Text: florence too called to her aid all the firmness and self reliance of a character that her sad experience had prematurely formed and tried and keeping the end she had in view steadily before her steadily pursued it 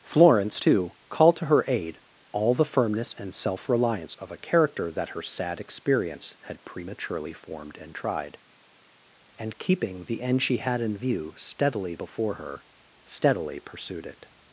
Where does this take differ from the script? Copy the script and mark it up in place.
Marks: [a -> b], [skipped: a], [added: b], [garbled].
florence too called to her aid all the firmness and self reliance of a character that her sad experience had prematurely formed and tried and keeping the end she had in view steadily before her steadily pursued it